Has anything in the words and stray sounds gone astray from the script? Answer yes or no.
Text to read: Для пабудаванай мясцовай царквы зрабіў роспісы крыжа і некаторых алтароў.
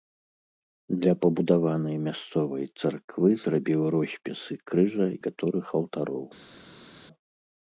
yes